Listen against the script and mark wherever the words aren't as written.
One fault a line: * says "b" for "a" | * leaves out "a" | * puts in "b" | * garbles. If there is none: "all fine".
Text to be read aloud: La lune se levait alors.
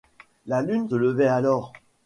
* leaves out "se"